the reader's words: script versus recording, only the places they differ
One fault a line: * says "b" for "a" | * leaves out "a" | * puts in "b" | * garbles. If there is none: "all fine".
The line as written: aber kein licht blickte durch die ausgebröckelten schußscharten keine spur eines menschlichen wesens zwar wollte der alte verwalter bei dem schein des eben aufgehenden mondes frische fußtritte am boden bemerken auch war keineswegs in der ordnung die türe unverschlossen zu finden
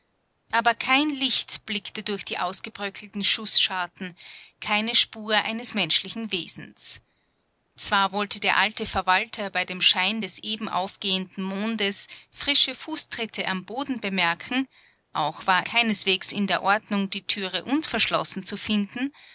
all fine